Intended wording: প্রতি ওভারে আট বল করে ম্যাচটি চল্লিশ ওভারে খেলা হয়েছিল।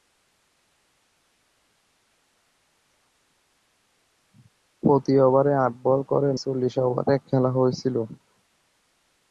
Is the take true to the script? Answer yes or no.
no